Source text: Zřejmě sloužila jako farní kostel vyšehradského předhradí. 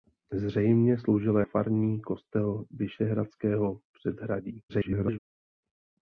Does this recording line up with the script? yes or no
no